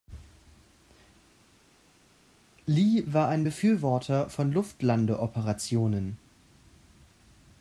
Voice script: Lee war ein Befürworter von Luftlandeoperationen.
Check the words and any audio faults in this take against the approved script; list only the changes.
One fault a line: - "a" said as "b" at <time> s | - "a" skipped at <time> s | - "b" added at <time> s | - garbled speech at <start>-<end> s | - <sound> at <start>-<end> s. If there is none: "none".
none